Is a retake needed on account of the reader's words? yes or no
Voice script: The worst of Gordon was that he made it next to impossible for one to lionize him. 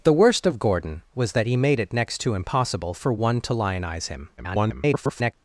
yes